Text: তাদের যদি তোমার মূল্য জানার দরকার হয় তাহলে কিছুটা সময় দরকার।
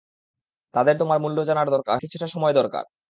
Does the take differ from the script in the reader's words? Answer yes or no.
yes